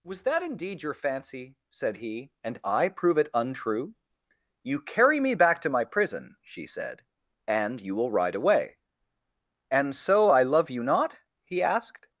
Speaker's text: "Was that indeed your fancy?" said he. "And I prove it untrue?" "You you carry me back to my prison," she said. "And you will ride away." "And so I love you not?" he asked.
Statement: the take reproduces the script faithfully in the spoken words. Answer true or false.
false